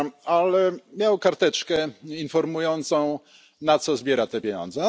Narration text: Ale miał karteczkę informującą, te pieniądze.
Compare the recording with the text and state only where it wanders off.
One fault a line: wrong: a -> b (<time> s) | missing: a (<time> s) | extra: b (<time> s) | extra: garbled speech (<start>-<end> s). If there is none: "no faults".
extra: na co zbiera (3.6 s)